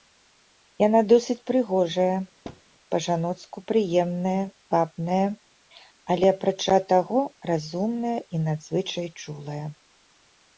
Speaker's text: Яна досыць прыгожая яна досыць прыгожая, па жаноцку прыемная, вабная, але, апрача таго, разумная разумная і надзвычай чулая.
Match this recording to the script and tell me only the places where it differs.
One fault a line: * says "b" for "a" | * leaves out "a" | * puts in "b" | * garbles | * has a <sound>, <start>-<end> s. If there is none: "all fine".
* leaves out "яна досыць прыгожая"
* has a thud, 2.4-2.6 s
* leaves out "разумная"